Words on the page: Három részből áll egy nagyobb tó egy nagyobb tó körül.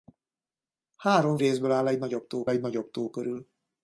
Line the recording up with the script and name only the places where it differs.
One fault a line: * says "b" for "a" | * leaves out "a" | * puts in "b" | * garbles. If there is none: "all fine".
all fine